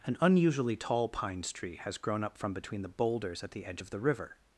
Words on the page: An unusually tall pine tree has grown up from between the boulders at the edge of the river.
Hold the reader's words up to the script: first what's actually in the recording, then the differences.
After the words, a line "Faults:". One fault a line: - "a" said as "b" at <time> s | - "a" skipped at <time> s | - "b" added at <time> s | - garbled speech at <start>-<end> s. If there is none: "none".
An unusually tall pines tree has grown up from between the boulders at the edge of the river.
Faults:
- "pine" said as "pines" at 1.1 s